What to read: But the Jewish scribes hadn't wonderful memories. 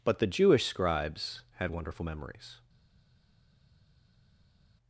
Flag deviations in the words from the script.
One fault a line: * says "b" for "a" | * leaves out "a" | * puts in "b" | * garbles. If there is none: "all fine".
* says "had" for "hadn't"